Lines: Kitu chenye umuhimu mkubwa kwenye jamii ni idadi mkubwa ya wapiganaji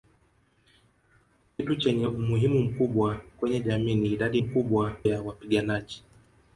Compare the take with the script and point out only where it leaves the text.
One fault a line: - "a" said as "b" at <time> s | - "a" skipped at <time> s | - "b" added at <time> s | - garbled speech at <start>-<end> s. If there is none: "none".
none